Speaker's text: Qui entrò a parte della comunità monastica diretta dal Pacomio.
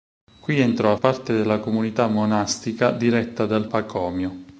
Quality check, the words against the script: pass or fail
pass